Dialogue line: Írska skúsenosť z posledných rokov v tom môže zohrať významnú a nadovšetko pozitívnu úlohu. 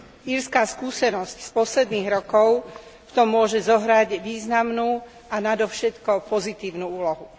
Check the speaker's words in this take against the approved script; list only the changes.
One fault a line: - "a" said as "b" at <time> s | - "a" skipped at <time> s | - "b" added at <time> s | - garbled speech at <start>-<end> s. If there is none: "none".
none